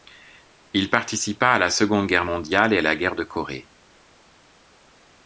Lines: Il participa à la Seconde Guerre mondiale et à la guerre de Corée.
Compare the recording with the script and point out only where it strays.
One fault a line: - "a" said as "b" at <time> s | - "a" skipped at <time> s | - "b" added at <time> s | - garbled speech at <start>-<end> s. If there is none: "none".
none